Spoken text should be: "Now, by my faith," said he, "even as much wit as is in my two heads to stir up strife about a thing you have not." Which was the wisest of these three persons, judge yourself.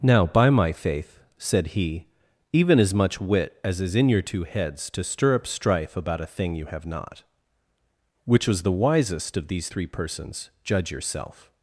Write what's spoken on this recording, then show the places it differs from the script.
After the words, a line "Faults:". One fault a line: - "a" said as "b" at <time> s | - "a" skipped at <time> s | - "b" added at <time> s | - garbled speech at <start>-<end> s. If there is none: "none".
"Now, by my faith," said he, "even as much wit as is in your two heads to stir up strife about a thing you have not." Which was the wisest of these three persons, judge yourself.
Faults:
- "my" said as "your" at 4.1 s